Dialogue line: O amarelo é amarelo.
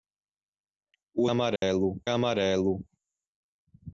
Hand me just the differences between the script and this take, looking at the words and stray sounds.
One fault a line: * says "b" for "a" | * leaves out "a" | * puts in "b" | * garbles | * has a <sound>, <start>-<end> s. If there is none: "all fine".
* has a dropout, 1.6-1.6 s